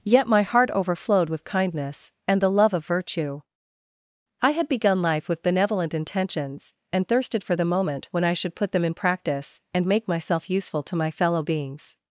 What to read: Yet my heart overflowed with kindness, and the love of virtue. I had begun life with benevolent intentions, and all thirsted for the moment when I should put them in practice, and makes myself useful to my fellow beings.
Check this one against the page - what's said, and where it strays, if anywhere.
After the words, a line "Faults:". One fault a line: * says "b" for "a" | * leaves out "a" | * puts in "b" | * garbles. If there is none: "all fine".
Yet my heart overflowed with kindness, and the love of virtue. I had begun life with benevolent intentions, and thirsted for the moment when I should put them in practice, and make myself useful to my fellow beings.
Faults:
* leaves out "all"
* says "make" for "makes"